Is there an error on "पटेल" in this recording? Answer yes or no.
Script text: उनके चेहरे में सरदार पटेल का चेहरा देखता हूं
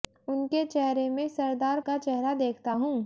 yes